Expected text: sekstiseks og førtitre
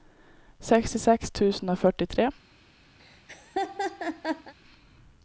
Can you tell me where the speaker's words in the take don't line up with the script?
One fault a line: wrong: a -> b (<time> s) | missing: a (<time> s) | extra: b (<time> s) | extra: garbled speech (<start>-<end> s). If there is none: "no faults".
extra: tusen (1.3 s)